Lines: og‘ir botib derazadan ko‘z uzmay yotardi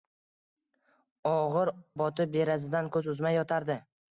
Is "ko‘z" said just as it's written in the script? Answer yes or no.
yes